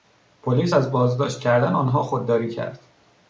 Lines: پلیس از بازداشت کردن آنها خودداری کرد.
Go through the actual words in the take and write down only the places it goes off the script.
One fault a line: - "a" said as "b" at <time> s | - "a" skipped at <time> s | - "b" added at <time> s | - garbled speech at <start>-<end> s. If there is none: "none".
none